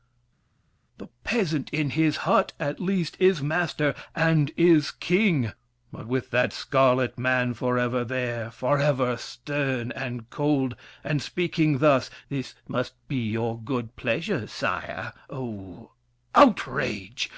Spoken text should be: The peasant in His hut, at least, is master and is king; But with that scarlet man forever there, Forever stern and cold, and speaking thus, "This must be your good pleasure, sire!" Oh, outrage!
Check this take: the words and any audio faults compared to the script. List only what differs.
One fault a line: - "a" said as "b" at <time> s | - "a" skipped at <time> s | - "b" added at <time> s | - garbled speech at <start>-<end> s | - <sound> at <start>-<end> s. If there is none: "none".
none